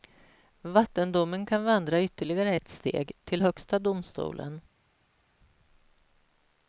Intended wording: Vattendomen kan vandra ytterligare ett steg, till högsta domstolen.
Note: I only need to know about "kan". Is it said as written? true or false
true